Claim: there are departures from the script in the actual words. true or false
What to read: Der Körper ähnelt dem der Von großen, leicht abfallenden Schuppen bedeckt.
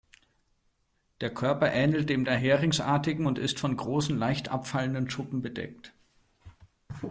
true